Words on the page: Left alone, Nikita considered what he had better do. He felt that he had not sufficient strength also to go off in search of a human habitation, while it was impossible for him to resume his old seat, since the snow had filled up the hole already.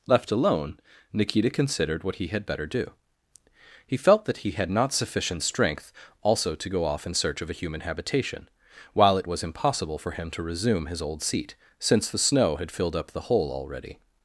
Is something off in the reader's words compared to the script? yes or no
no